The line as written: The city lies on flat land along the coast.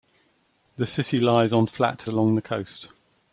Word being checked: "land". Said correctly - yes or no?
no